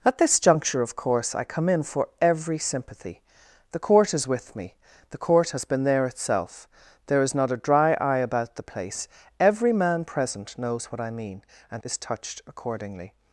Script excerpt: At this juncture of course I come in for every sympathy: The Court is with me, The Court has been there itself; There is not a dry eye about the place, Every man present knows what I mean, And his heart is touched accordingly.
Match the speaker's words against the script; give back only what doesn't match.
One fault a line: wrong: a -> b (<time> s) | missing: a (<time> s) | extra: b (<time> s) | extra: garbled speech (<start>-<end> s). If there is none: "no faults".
missing: his heart (11.8 s)